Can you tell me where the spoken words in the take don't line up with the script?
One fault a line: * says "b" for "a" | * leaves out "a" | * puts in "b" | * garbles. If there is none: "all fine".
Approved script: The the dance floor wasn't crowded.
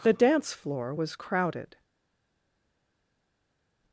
* leaves out "the"
* says "was" for "wasn't"